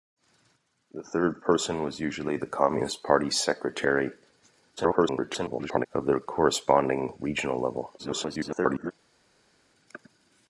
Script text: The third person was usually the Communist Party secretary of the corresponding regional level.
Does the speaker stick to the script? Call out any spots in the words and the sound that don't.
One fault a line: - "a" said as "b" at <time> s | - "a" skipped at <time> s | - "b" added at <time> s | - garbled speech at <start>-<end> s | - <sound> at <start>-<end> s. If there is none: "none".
- garbled speech at 4.8-5.9 s
- garbled speech at 8.0-8.9 s